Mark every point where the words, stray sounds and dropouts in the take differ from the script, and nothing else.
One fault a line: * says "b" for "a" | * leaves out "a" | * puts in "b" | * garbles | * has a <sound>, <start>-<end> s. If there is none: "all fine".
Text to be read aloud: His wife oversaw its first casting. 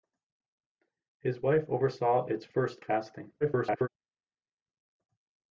* garbles